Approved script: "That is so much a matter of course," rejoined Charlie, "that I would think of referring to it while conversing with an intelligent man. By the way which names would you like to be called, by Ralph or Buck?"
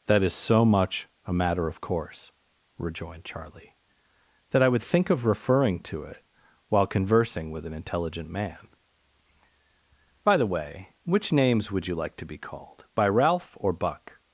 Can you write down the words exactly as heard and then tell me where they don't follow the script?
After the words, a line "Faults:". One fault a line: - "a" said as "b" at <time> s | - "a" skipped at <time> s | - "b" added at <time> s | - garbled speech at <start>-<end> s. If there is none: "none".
"That is so much a matter of course," rejoined Charlie, "that I would think of referring to it while conversing with an intelligent man. By the way which names would you like to be called, by Ralph or Buck?"
Faults:
none